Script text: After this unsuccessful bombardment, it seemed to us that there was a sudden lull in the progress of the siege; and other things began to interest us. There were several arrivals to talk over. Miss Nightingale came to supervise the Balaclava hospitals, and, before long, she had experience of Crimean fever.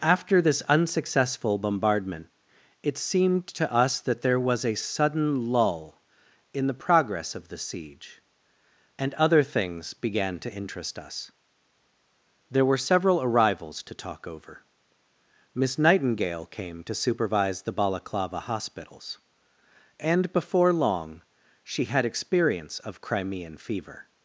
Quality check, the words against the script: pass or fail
pass